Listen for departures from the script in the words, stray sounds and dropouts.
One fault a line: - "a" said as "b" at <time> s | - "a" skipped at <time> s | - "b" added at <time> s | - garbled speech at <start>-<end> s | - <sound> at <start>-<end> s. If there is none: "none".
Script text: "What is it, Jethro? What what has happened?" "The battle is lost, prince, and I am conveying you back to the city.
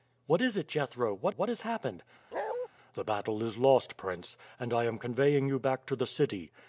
- bark at 2.3-2.7 s